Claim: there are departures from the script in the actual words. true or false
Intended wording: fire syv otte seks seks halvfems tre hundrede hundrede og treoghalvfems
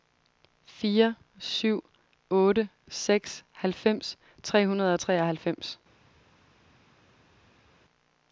true